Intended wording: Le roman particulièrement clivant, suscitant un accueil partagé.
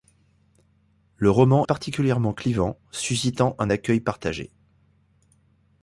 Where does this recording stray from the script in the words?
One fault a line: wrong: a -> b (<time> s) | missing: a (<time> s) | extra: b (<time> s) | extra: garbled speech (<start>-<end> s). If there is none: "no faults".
no faults